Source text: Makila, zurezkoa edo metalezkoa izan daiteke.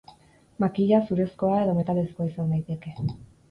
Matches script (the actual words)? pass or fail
pass